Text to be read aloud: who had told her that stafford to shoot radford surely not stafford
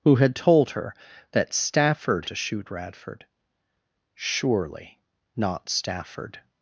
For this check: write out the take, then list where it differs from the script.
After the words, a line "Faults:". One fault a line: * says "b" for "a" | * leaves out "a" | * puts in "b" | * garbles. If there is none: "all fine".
who had told her that stafford to shoot radford surely not stafford
Faults:
all fine